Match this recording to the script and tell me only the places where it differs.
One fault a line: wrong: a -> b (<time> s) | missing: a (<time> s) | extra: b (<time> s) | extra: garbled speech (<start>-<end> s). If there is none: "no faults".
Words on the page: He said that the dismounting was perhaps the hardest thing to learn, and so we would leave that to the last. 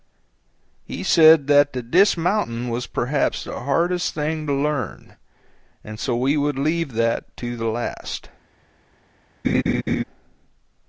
no faults